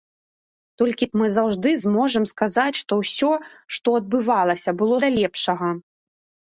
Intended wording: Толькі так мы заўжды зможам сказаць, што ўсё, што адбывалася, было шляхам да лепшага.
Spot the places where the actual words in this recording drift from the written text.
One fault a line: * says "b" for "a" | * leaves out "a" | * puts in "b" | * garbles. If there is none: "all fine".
* leaves out "так"
* leaves out "шляхам"